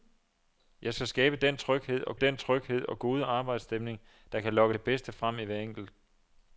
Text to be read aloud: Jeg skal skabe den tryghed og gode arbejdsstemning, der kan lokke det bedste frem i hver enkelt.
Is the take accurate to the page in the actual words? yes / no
no